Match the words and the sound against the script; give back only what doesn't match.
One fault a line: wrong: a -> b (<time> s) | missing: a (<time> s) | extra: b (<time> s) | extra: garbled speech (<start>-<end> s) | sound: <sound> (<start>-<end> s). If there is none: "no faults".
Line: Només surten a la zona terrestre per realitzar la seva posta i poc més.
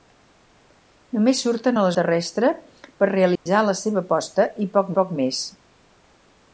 missing: zona (1.9 s)
sound: dropout (3.4-3.5 s)
extra: poc (5.0 s)